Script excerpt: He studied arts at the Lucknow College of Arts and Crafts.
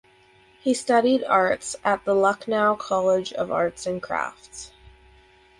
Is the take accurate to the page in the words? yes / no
yes